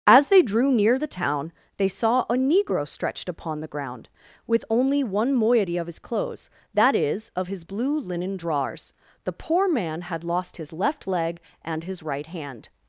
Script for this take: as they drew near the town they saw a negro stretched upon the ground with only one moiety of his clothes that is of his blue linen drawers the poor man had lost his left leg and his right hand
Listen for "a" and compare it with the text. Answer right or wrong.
right